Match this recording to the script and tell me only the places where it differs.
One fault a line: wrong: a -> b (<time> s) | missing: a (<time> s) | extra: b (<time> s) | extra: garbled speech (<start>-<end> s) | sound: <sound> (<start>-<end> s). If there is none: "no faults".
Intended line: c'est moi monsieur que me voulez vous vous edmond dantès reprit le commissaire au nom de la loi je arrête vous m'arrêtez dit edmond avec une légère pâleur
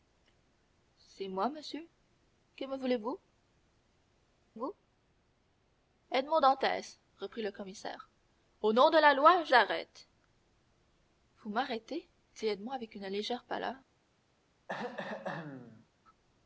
sound: throat clearing (14.7-15.9 s)